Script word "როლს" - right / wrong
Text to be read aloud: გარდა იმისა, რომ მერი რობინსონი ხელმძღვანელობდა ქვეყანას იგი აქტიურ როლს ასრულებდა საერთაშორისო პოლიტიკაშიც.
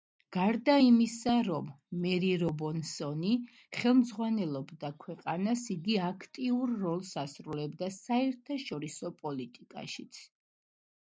right